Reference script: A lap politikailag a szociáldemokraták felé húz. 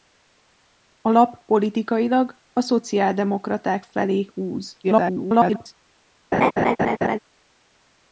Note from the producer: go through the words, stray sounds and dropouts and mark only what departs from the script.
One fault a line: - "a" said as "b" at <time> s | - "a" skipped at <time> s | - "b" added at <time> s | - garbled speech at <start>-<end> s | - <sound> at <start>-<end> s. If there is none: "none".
- garbled speech at 4.8-5.7 s
- laugh at 6.3-7.2 s